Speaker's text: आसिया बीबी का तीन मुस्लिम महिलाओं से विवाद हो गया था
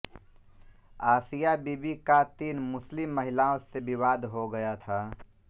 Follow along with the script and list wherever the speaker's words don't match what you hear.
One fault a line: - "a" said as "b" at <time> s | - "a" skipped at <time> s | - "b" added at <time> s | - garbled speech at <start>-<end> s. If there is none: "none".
none